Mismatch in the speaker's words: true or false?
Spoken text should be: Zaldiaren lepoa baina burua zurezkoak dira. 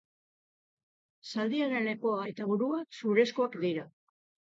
true